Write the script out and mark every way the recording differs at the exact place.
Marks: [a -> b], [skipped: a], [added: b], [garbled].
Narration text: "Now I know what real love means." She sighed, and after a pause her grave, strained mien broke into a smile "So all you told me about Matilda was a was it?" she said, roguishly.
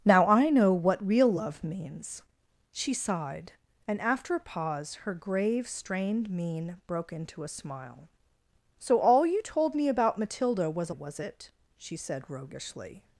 "Now I know what real love means." She sighed, and after a pause her grave, strained mien broke into a smile "So all you told me about Matilda was a was it?" she said, roguishly.